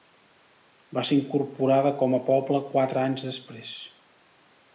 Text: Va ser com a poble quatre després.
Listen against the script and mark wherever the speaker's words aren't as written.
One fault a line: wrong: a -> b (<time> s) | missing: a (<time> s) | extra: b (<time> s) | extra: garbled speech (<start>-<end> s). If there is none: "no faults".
extra: incorporada (1.2 s)
extra: anys (3.1 s)